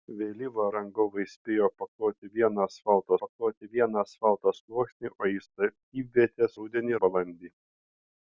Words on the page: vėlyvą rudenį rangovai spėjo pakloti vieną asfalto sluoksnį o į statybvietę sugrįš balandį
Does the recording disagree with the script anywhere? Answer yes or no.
yes